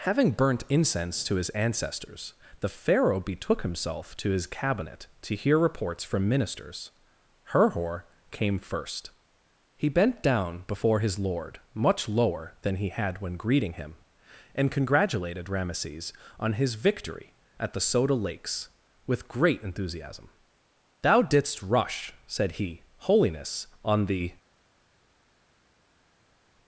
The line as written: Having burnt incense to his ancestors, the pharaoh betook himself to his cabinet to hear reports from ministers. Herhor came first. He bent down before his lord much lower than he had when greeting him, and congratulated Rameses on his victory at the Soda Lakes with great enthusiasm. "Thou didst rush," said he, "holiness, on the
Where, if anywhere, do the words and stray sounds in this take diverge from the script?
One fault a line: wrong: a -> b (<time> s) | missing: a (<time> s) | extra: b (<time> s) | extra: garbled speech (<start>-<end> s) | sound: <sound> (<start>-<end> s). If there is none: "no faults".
no faults